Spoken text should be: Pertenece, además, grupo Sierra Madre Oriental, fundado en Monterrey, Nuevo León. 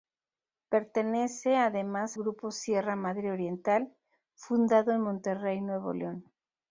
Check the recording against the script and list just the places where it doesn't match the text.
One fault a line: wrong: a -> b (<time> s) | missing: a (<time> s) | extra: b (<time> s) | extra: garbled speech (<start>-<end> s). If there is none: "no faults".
no faults